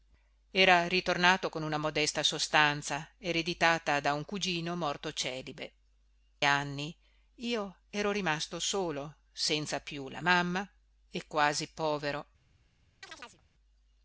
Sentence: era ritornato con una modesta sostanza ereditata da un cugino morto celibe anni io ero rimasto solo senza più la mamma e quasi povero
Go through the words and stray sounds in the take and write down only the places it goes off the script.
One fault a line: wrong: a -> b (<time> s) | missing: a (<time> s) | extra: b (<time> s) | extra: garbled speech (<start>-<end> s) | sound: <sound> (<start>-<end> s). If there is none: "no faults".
sound: chirp (13.0-13.4 s)